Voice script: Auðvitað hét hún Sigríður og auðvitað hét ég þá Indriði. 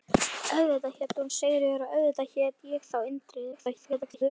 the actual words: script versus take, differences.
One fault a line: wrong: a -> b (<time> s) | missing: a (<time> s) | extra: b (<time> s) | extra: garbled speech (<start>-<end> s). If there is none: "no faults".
extra: garbled speech (3.5-4.3 s)